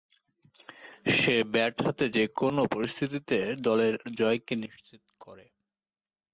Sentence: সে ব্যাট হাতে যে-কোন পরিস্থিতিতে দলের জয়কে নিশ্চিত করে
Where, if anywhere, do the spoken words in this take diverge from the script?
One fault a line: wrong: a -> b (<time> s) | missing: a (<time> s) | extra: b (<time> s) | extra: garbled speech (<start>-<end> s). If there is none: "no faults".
no faults